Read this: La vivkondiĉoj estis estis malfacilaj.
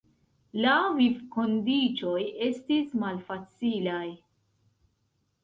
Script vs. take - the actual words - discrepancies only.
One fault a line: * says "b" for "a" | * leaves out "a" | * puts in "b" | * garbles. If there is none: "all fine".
* leaves out "estis"